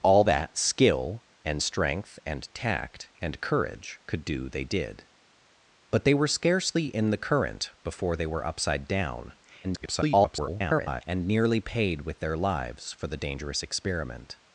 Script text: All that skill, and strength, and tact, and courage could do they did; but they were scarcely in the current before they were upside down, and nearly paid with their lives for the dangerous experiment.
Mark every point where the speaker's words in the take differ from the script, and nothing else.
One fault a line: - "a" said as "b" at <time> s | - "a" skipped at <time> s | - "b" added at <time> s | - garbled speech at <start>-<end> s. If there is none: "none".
- garbled speech at 9.6-11.0 s